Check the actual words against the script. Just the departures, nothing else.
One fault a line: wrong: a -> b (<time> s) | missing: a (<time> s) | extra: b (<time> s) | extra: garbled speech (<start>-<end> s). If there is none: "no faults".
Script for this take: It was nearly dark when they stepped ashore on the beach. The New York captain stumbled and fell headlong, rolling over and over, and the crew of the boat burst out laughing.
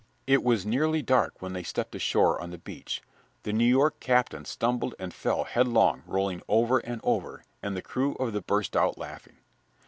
missing: boat (8.4 s)